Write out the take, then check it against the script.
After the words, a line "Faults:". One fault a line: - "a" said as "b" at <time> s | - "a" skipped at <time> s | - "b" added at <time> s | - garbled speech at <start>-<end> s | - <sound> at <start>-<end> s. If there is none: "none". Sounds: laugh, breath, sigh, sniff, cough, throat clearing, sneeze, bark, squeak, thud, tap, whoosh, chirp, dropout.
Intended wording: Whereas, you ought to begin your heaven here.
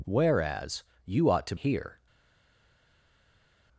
Whereas, you ought to here.
Faults:
- "begin your heaven" skipped at 1.6 s